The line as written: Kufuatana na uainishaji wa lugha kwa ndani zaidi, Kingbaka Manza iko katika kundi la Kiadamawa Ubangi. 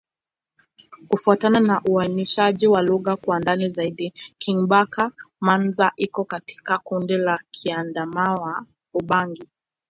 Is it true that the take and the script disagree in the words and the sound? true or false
false